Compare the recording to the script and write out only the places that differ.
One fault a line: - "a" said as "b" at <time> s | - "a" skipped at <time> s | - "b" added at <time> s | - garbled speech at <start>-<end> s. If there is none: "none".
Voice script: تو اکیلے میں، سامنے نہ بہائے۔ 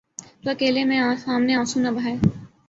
- "آنسو" added at 1.5 s